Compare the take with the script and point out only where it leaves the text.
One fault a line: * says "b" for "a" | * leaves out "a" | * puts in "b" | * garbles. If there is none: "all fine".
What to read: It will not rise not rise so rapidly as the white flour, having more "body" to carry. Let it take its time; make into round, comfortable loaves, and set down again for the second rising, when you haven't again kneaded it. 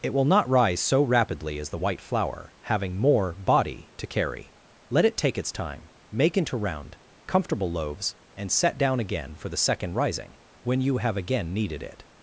* leaves out "not rise"
* says "have" for "haven't"